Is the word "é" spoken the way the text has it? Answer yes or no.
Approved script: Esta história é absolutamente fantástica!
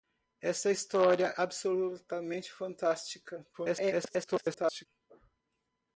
no